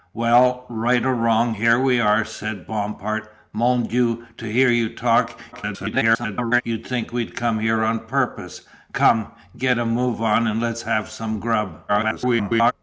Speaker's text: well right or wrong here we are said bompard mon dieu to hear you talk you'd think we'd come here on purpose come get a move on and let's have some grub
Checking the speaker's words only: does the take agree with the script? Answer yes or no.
no